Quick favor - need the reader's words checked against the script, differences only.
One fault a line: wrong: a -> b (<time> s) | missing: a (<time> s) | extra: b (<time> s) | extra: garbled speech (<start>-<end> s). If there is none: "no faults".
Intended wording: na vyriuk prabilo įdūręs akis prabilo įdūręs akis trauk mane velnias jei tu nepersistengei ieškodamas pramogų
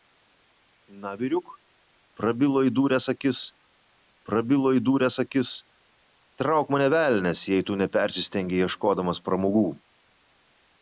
no faults